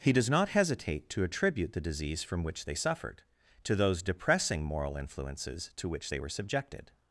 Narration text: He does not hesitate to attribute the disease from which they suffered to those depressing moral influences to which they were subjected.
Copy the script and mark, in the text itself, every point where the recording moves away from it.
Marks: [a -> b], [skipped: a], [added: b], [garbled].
He does not hesitate to attribute the disease from which they suffered to those depressing moral influences to which they were subjected.